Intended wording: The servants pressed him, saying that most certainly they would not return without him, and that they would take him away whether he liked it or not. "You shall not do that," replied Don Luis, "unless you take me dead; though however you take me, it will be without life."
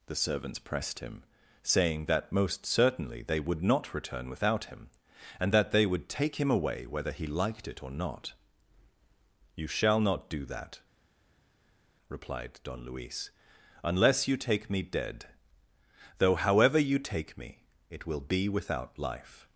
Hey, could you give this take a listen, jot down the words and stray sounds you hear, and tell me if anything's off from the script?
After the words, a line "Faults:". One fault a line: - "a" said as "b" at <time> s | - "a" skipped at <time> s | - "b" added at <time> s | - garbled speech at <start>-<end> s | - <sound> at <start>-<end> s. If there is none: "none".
The servants pressed him, saying that most certainly they would not return without him, and that they would take him away whether he liked it or not. "You shall not do that," replied Don Luis, "unless you take me dead; though however you take me, it will be without life."
Faults:
none